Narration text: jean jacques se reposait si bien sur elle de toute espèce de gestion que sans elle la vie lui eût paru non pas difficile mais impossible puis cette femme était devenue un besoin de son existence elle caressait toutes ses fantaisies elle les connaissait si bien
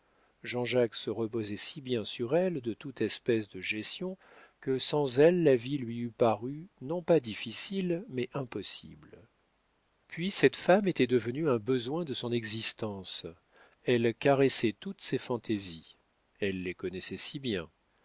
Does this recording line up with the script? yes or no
yes